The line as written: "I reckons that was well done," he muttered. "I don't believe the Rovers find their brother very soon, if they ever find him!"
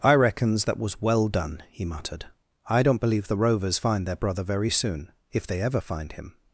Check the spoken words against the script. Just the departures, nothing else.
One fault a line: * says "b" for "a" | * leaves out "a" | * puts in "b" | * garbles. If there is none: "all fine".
all fine